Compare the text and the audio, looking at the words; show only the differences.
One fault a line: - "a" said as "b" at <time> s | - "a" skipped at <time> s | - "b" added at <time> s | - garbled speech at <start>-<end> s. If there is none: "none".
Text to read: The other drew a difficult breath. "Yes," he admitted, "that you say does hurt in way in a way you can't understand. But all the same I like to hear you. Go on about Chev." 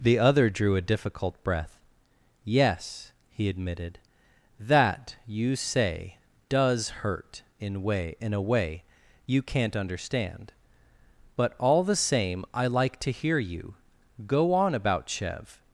none